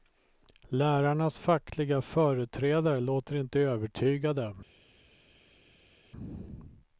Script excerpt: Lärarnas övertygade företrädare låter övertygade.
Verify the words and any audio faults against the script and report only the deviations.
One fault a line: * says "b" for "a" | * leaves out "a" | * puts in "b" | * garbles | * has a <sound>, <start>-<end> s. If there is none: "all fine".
* says "fackliga" for "övertygade"
* puts in "inte"